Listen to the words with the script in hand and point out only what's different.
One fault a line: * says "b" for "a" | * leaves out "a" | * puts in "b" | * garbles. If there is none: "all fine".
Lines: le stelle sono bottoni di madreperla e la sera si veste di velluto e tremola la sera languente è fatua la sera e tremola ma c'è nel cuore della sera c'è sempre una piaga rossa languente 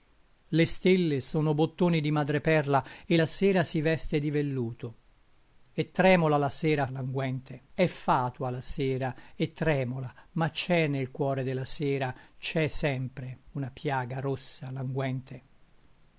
all fine